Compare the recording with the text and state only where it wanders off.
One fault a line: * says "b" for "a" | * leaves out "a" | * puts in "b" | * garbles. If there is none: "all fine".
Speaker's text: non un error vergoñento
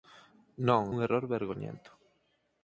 all fine